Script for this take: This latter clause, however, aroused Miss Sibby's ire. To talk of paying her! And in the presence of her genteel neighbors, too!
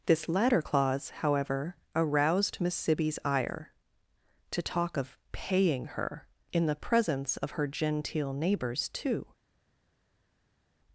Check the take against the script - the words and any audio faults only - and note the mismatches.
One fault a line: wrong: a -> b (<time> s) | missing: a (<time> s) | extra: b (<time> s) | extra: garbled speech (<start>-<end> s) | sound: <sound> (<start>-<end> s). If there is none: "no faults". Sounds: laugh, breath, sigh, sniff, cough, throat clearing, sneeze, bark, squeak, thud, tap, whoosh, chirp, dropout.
missing: And (6.2 s)